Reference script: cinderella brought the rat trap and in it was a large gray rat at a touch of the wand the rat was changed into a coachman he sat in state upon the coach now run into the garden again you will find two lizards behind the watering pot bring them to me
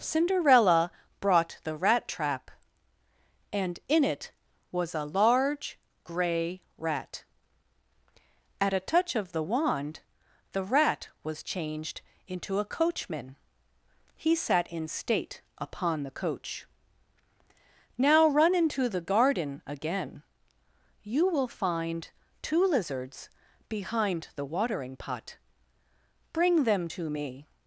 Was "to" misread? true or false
false